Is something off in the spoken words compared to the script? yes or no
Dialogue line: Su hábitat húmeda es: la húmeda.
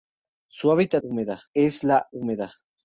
no